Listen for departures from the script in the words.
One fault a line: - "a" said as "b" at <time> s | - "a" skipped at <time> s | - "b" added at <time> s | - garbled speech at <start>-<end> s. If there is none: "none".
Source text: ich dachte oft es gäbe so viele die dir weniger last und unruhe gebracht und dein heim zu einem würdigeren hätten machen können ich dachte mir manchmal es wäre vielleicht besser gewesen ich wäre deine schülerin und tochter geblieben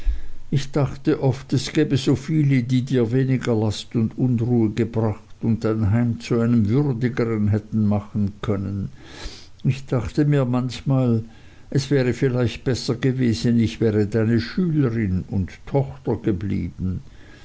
none